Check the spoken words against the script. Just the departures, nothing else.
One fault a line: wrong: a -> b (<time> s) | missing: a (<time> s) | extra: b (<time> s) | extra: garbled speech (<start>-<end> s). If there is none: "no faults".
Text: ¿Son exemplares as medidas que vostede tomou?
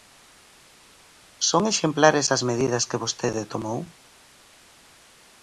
no faults